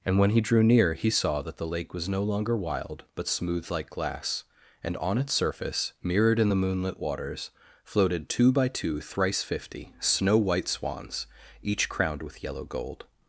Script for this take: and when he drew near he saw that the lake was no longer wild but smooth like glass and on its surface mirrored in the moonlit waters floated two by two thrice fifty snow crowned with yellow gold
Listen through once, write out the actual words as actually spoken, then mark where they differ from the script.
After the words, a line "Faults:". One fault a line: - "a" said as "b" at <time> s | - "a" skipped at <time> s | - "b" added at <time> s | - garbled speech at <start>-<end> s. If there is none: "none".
and when he drew near he saw that the lake was no longer wild but smooth like glass and on its surface mirrored in the moonlit waters floated two by two thrice fifty snow white swans each crowned with yellow gold
Faults:
- "white swans each" added at 10.4 s